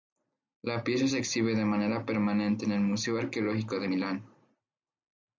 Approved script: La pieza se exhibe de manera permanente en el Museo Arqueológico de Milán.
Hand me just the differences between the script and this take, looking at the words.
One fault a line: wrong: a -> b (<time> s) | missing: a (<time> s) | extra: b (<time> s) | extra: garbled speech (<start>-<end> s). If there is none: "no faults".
no faults